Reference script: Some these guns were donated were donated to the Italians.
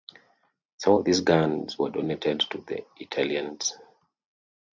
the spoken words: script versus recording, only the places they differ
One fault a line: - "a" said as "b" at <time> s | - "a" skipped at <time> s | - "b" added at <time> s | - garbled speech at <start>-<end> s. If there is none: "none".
- "of" added at 0.9 s
- "were donated" skipped at 2.4 s